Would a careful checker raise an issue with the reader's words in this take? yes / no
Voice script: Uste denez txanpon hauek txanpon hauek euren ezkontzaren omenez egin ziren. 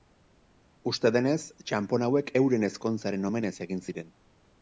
yes